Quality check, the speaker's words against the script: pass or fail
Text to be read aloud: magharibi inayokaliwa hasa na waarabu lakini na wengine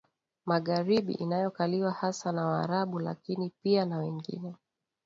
fail